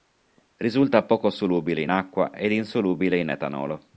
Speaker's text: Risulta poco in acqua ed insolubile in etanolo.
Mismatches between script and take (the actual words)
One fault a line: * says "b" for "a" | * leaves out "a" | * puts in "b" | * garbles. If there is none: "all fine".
* puts in "solubile"